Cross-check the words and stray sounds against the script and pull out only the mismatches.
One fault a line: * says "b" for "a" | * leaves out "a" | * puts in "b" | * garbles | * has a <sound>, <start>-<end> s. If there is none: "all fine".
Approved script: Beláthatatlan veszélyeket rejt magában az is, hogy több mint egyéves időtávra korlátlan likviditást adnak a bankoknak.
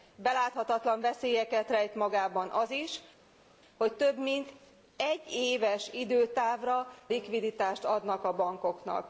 * leaves out "korlátlan"